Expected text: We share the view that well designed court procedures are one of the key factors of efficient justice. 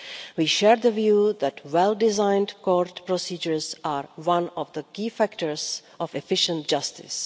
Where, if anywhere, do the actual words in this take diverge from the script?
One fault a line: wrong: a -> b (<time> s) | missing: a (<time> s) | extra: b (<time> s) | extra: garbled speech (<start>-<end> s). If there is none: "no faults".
no faults